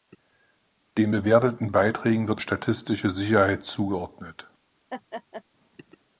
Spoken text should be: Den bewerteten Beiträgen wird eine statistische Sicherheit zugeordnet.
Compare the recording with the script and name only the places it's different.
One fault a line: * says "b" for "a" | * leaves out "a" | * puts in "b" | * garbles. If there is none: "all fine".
* leaves out "eine"